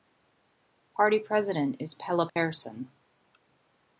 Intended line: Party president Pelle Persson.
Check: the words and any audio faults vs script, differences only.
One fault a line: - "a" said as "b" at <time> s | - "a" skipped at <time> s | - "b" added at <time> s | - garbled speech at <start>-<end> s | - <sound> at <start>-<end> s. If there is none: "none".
- "is" added at 1.8 s
- dropout at 2.3-2.4 s